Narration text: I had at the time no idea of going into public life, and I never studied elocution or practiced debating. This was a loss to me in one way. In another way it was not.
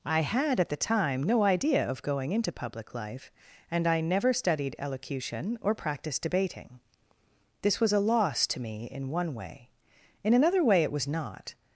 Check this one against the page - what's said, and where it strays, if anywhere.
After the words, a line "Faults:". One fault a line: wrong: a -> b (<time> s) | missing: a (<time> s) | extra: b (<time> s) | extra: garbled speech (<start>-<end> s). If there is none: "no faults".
I had at the time no idea of going into public life, and I never studied elocution or practiced debating. This was a loss to me in one way. In another way it was not.
Faults:
no faults